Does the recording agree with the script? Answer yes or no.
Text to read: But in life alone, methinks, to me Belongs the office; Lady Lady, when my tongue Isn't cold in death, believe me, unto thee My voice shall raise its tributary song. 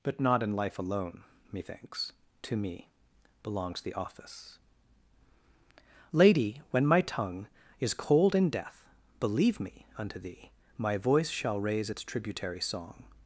no